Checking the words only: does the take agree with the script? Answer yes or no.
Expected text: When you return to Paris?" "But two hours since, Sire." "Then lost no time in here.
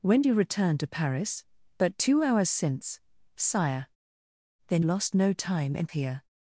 yes